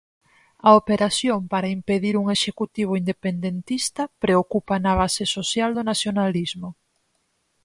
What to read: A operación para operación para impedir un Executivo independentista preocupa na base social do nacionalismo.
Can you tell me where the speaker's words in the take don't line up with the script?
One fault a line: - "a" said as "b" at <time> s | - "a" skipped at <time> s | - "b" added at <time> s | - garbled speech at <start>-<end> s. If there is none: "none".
- "operación para" skipped at 1.7 s